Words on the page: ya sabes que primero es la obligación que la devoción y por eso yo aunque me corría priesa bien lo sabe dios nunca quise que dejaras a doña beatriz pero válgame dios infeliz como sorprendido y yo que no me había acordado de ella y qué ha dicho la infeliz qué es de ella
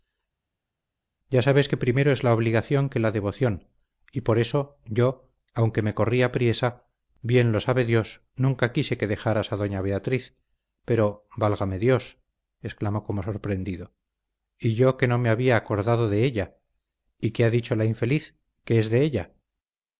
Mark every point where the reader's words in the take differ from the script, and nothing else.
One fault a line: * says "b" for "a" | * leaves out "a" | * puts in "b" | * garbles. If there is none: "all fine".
* says "exclamó" for "infeliz"